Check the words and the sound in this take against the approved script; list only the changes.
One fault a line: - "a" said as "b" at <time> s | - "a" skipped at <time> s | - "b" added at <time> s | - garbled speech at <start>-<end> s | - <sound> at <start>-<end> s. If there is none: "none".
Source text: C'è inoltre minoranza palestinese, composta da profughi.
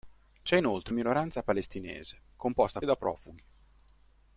none